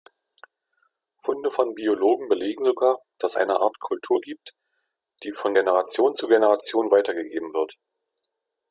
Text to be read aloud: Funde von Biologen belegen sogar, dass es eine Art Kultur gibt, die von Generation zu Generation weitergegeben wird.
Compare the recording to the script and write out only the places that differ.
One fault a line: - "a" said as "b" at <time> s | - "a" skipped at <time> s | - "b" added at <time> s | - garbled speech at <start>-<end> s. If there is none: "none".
- "es" skipped at 3.4 s